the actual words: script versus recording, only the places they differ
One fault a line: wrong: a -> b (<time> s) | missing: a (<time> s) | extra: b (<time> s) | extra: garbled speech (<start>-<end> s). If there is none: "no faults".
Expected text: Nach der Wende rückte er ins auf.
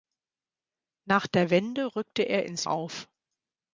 no faults